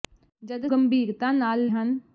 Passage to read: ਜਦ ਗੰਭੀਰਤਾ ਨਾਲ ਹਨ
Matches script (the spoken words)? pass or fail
pass